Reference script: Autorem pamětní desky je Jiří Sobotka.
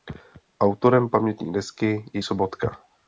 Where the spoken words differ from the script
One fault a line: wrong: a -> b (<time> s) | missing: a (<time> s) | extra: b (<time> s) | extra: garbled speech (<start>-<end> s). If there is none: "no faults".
missing: Jiří (2.2 s)